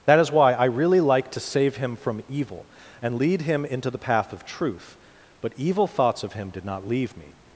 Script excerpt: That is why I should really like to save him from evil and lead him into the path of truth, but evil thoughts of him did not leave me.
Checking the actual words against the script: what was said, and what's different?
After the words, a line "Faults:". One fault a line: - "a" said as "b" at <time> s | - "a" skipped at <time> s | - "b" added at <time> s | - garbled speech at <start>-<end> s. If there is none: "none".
That is why I really like to save him from evil and lead him into the path of truth, but evil thoughts of him did not leave me.
Faults:
- "should" skipped at 0.7 s